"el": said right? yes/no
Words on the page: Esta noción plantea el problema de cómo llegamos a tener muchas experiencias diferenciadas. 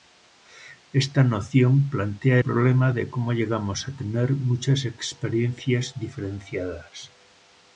no